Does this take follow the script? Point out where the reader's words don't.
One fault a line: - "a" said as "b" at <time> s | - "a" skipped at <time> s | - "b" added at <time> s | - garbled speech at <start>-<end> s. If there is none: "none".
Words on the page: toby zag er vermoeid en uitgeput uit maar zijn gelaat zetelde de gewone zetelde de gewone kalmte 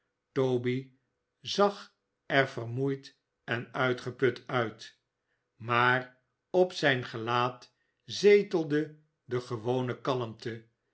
- "op" added at 6.5 s
- "zetelde de gewone" skipped at 10.0 s